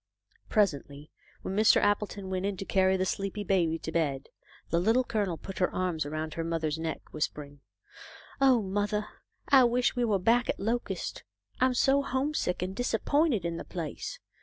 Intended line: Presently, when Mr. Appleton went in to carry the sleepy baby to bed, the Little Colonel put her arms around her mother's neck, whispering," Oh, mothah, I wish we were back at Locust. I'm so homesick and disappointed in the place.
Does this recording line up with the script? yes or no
yes